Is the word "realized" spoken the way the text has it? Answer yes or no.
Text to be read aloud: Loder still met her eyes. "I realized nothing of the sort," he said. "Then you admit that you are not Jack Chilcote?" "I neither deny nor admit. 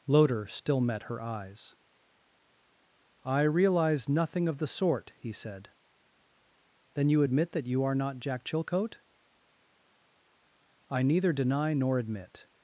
no